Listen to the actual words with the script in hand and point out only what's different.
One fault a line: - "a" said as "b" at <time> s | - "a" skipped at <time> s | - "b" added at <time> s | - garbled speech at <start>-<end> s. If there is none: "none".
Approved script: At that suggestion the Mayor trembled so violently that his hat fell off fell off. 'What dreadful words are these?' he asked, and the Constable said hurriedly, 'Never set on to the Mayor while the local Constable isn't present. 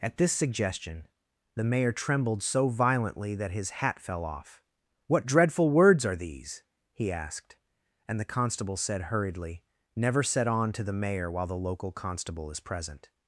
- "that" said as "this" at 0.2 s
- "fell off" skipped at 4.6 s
- "isn't" said as "is" at 12.5 s